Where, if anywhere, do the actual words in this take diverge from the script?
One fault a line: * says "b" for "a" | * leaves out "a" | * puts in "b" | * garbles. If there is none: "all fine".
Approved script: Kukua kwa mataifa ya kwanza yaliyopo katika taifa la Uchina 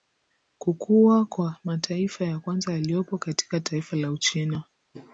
all fine